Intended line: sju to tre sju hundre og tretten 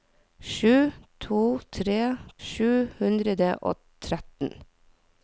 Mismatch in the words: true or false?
false